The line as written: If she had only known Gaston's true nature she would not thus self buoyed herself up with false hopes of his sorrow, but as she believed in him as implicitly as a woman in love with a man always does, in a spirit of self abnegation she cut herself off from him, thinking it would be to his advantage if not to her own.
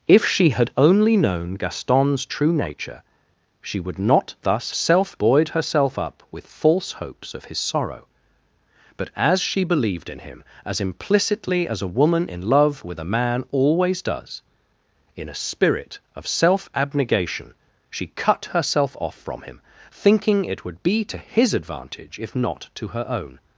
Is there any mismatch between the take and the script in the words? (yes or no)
no